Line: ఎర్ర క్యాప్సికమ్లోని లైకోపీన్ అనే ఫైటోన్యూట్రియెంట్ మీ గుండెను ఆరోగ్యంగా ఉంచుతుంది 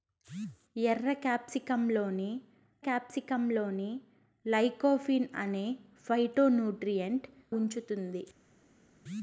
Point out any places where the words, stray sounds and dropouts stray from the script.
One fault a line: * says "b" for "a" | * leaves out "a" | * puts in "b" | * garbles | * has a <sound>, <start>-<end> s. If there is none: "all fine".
* puts in "క్యాప్సికమ్లోని"
* leaves out "మీ గుండెను ఆరోగ్యంగా"